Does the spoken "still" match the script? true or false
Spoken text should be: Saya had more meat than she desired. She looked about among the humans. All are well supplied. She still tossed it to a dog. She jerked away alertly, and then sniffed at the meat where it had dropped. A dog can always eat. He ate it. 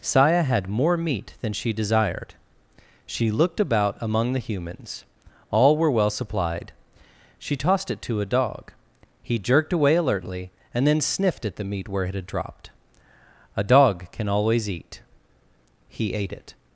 false